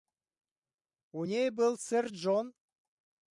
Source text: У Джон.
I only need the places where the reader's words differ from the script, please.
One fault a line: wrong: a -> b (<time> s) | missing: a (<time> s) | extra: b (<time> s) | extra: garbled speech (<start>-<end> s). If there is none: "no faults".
extra: ней был сэр (1.2 s)